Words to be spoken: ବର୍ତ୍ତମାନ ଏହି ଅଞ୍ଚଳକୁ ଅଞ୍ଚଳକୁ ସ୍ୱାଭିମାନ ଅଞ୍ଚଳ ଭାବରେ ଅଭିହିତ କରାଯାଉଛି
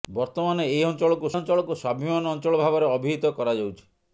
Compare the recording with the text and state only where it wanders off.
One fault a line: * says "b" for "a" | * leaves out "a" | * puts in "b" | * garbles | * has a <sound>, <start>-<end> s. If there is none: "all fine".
all fine